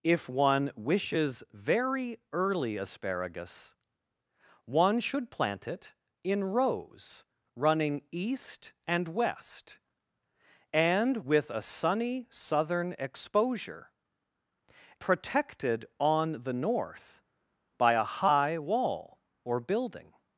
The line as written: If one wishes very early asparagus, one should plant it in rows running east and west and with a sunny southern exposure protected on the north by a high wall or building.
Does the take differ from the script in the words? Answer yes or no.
no